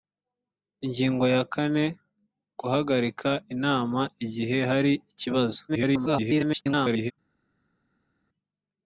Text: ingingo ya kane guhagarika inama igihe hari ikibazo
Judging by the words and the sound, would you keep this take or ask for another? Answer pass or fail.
fail